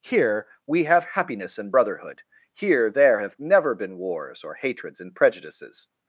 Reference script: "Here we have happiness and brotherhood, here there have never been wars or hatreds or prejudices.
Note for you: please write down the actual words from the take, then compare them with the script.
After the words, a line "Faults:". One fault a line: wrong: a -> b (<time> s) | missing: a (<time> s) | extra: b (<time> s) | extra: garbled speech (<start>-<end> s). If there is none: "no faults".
"Here we have happiness and brotherhood, here there have never been wars or hatreds and prejudices.
Faults:
wrong: or -> and (5.0 s)